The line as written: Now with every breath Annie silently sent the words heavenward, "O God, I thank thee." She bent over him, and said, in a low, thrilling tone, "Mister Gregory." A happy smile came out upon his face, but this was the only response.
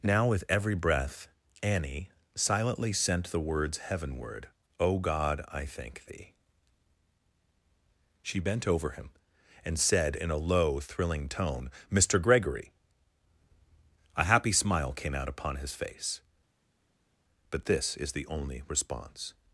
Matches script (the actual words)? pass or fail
fail